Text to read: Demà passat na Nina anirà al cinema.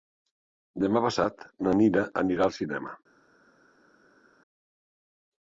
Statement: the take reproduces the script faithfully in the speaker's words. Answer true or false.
true